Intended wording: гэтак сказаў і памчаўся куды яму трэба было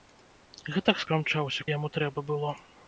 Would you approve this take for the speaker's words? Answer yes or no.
no